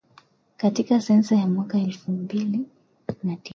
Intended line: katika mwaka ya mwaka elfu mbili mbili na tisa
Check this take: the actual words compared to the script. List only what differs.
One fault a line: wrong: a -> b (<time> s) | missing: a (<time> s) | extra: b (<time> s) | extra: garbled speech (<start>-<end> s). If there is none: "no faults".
wrong: mwaka -> sensa (1.0 s)
missing: mbili (2.6 s)